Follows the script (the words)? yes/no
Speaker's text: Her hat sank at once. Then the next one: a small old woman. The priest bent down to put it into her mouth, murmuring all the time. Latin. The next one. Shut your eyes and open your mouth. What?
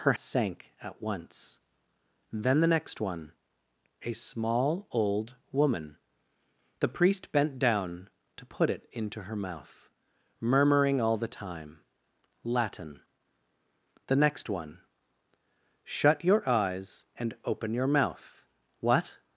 no